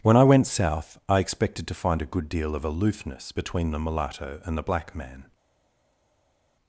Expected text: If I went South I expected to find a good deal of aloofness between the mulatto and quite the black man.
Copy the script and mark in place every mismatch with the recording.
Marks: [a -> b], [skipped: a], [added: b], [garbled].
[If -> When] I went South I expected to find a good deal of aloofness between the mulatto and [skipped: quite] the black man.